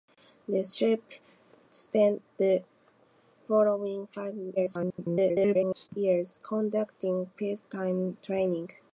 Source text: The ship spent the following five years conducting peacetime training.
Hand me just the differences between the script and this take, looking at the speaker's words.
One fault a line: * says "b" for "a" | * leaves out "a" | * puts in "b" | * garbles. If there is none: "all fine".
* garbles